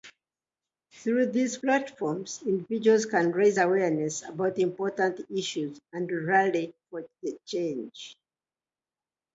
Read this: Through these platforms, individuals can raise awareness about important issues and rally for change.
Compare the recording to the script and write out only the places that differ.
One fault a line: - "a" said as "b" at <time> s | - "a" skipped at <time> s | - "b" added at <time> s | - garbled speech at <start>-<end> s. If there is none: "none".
none